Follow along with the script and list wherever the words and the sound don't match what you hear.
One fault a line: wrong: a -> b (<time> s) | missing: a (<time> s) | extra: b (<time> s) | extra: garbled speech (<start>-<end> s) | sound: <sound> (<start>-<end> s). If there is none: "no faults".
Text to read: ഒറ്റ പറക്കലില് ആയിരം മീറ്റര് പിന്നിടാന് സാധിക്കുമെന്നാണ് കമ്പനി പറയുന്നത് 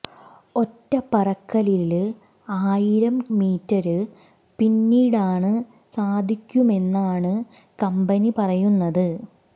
no faults